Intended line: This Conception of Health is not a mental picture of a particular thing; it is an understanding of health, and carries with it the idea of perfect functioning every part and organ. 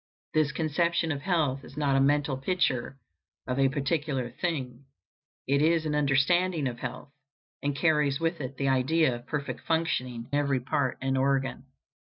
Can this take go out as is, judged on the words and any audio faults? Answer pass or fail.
pass